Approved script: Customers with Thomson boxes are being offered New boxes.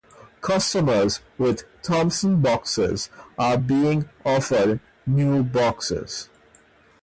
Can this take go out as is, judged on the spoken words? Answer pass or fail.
pass